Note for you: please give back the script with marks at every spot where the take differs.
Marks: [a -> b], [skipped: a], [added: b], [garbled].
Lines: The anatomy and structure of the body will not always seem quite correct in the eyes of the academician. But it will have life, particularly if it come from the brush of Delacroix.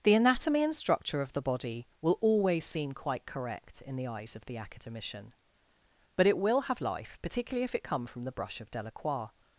The anatomy and structure of the body will [skipped: not] always seem quite correct in the eyes of the academician. But it will have life, particularly if it come from the brush of Delacroix.